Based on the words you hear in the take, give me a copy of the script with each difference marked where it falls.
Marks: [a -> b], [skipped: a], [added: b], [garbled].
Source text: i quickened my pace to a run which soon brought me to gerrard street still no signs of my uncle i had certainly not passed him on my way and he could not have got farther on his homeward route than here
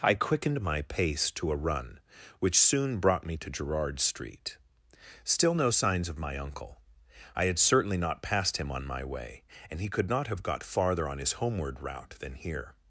i quickened my pace to a run which soon brought me to gerrard street still no signs of my uncle i had certainly not passed him on my way and he could not have got farther on his homeward route than here